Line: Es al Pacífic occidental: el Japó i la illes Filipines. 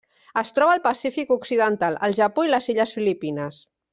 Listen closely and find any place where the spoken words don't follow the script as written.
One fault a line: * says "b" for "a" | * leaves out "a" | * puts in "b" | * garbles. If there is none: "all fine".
* puts in "troba"
* says "les" for "la"